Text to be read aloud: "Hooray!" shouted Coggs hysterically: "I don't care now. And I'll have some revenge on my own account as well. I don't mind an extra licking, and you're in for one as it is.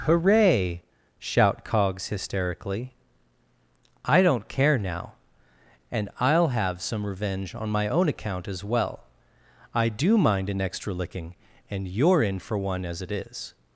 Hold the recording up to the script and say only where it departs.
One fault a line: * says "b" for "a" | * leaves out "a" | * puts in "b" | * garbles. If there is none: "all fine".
* says "shout" for "shouted"
* says "do" for "don't"